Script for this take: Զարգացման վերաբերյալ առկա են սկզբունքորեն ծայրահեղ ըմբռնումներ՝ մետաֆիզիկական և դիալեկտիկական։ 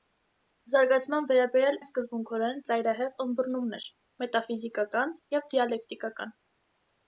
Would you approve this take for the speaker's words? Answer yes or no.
no